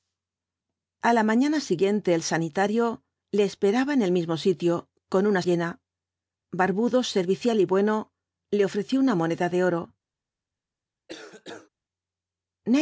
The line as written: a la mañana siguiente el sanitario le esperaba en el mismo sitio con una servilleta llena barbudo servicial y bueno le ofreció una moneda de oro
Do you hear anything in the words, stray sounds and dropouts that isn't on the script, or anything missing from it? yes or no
yes